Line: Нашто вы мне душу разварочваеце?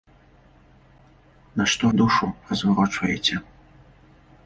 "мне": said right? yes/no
no